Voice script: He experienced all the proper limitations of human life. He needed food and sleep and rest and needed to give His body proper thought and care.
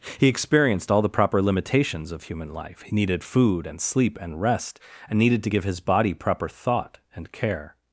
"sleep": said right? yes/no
yes